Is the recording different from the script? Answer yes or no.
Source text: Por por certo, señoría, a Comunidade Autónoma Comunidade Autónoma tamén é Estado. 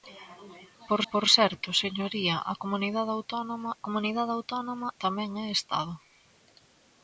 no